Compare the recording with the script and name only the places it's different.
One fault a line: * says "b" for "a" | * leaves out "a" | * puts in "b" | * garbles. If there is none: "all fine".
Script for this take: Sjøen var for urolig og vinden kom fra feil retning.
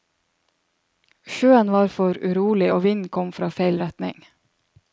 all fine